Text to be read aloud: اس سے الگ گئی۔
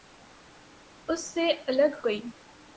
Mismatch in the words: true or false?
false